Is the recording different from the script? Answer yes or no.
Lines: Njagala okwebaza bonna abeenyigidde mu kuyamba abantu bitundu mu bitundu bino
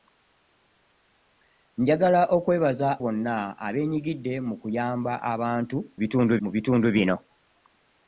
no